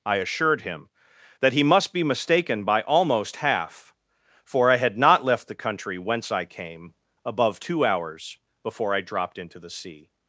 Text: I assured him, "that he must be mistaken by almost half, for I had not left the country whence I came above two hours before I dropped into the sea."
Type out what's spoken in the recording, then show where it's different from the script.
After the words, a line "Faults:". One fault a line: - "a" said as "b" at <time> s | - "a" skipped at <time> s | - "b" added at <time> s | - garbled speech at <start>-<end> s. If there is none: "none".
I assured him, "that he must be mistaken by almost half, for I had not left the country whence I came above two hours before I dropped into the sea."
Faults:
none